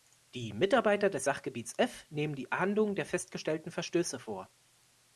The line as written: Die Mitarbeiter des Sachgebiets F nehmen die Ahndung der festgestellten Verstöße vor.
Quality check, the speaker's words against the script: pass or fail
pass